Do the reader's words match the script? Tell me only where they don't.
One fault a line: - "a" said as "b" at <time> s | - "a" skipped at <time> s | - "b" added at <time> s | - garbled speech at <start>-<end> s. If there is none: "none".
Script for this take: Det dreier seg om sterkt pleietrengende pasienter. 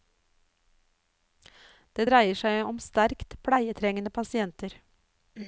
none